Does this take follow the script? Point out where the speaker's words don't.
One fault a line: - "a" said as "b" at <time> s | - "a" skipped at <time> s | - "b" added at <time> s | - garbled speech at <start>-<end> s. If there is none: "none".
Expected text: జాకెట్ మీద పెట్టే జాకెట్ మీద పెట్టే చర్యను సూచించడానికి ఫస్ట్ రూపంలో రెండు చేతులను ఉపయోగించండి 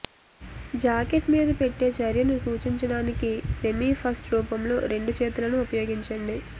- "జాకెట్ మీద పెట్టే" skipped at 1.9 s
- "సెమీ" added at 3.6 s